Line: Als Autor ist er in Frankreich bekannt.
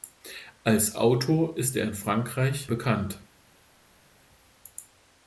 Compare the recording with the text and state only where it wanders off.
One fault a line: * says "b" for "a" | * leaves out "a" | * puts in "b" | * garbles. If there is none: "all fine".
all fine